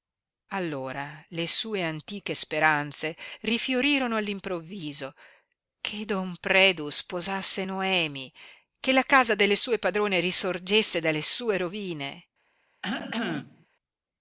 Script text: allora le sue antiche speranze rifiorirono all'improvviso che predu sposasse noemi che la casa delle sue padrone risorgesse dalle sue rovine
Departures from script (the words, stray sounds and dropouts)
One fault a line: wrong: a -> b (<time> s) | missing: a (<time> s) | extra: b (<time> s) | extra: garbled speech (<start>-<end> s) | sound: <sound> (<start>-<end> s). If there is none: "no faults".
extra: don (6.0 s)
sound: cough (12.8-13.7 s)